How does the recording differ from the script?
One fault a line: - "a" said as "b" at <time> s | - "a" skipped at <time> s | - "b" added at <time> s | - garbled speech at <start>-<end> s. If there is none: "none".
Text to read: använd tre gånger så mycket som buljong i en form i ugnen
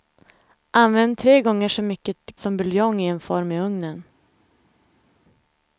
none